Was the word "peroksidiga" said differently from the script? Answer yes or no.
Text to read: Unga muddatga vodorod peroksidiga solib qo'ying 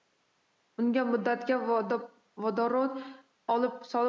yes